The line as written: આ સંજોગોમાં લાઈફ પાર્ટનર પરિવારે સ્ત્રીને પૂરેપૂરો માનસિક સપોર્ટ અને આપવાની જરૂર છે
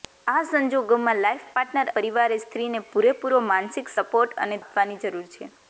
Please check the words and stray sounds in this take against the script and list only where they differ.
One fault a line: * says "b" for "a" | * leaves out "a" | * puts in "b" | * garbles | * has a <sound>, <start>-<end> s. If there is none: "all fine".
all fine